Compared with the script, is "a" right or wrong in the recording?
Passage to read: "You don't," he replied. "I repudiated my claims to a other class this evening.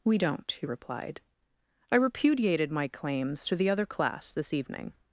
wrong